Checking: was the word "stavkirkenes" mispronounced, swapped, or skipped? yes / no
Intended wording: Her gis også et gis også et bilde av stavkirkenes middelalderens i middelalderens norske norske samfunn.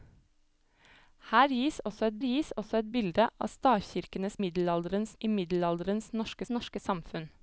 no